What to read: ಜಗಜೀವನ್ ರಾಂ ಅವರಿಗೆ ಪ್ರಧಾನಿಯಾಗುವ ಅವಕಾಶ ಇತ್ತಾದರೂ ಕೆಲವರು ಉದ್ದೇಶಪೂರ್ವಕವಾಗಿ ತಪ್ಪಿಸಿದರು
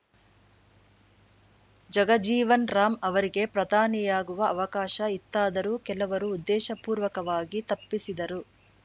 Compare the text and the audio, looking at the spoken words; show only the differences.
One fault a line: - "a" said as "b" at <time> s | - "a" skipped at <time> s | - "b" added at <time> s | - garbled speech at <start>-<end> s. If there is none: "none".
none